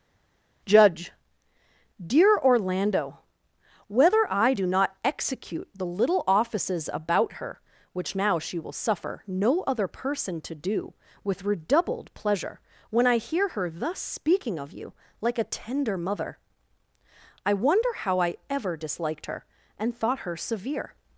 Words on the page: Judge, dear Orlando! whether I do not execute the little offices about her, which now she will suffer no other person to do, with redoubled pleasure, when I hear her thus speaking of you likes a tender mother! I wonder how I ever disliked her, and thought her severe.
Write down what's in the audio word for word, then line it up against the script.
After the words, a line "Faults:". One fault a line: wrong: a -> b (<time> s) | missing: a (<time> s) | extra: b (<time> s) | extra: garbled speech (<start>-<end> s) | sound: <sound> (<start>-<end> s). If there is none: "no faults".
Judge, dear Orlando! whether I do not execute the little offices about her, which now she will suffer no other person to do, with redoubled pleasure, when I hear her thus speaking of you like a tender mother! I wonder how I ever disliked her, and thought her severe.
Faults:
wrong: likes -> like (15.2 s)